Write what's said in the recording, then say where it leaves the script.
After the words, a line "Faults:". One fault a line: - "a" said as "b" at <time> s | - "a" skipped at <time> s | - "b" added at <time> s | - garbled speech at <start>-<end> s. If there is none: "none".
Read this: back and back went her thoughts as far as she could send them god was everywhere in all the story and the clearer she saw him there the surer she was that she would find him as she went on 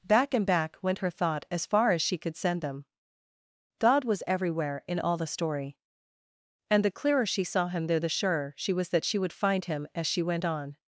back and back went her thought as far as she could send them god was everywhere in all the story and the clearer she saw him there the surer she was that she would find him as she went on
Faults:
- "thoughts" said as "thought" at 1.1 s